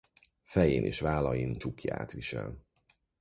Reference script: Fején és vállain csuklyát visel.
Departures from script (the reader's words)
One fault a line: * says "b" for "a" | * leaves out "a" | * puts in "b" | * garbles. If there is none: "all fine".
all fine